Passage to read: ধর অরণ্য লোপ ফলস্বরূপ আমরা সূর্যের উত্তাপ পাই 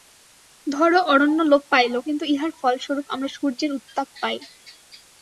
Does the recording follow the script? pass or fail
fail